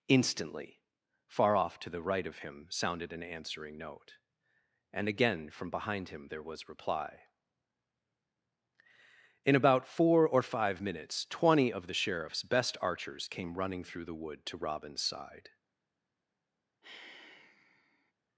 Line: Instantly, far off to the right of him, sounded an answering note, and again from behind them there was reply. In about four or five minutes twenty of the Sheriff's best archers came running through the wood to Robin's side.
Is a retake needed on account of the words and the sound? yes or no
yes